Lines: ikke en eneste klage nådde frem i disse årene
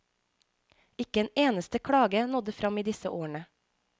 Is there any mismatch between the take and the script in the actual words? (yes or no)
no